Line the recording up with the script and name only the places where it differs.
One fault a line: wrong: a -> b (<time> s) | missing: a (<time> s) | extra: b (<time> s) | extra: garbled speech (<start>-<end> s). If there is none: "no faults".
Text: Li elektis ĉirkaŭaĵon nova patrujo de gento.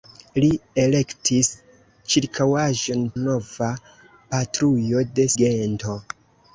no faults